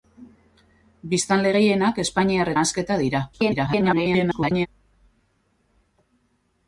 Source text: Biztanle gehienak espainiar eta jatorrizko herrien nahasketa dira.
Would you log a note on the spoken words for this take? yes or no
yes